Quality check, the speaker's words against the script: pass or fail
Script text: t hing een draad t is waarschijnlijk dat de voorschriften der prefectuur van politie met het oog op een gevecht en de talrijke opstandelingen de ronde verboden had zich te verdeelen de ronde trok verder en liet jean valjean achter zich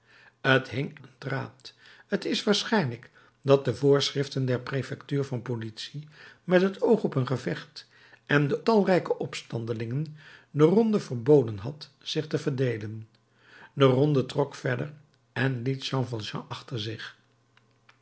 pass